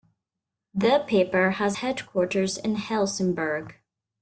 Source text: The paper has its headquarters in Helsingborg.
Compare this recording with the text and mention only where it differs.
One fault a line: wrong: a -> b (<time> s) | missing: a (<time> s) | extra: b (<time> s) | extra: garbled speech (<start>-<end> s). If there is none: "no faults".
missing: its (1.8 s)